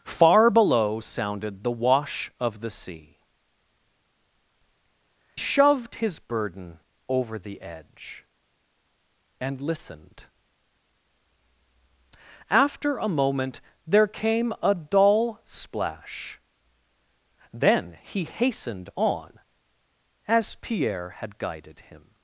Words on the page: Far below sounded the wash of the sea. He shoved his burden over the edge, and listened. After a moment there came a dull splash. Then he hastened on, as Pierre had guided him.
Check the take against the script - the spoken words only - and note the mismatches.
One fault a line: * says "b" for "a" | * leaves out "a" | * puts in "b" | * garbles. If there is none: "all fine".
* leaves out "He"